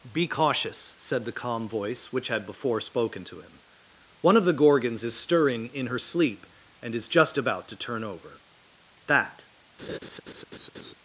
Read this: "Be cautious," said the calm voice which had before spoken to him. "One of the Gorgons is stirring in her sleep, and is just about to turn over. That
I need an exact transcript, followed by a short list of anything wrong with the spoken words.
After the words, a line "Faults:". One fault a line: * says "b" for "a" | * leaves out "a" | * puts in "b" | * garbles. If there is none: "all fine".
"Be cautious," said the calm voice which had before spoken to him. "One of the Gorgons is stirring in her sleep, and is just about to turn over. That
Faults:
all fine